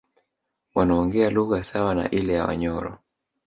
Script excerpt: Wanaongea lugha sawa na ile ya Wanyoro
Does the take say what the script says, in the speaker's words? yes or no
yes